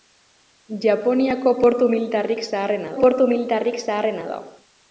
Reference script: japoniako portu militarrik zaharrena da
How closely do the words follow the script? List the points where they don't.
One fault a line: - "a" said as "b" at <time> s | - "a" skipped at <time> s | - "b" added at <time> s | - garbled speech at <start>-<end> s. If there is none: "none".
- "portu militarrik zaharrena" added at 3.0 s